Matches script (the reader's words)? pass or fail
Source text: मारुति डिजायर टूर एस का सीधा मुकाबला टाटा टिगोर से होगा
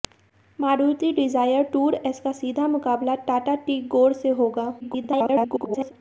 fail